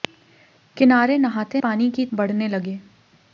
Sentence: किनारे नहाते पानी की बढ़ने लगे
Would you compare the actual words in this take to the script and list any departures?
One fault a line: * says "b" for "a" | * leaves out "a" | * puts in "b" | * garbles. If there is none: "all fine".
all fine